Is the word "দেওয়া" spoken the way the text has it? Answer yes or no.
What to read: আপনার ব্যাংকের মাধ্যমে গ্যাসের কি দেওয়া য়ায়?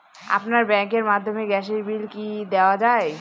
yes